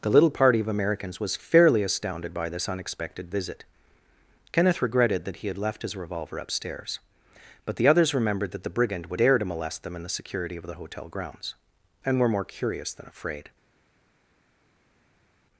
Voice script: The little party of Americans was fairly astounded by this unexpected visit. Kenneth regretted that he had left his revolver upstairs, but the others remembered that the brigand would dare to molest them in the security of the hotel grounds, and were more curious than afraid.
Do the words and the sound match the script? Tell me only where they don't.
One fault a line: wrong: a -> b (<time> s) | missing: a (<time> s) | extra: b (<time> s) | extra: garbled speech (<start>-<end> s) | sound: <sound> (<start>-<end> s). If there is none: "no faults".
no faults